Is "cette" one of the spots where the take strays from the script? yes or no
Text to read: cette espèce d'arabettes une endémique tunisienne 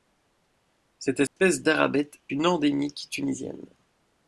no